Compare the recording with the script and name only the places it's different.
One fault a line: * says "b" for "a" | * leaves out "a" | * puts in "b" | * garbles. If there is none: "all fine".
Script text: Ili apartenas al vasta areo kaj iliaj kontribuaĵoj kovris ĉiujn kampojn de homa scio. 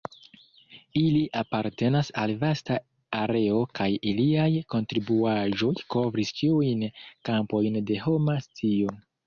all fine